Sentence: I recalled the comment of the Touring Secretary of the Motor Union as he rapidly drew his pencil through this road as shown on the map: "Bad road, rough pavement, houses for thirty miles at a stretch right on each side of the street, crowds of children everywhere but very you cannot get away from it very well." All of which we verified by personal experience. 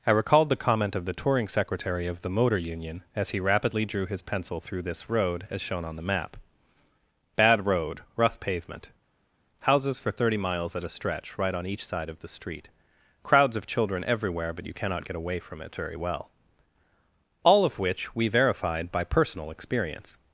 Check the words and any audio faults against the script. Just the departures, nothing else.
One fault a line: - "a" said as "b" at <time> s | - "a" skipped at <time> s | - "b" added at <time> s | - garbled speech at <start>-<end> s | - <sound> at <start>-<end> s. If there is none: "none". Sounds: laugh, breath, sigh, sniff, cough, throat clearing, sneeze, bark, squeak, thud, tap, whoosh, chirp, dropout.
- "very" skipped at 14.7 s